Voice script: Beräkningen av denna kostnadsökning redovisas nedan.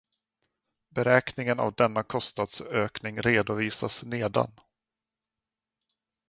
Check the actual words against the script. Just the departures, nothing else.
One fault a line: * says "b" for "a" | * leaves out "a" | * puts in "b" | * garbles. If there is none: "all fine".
all fine